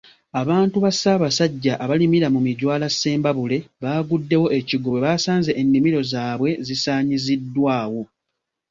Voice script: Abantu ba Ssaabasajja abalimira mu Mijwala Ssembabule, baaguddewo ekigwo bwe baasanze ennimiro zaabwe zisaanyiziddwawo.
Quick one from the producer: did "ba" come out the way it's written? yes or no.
yes